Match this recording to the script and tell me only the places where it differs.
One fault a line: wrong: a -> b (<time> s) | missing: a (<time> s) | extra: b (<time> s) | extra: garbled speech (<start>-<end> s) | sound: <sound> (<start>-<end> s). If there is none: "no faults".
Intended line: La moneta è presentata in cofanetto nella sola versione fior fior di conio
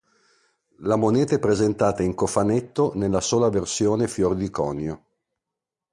missing: fior (4.3 s)